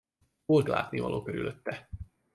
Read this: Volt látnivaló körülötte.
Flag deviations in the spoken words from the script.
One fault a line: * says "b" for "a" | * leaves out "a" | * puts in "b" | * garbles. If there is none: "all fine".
all fine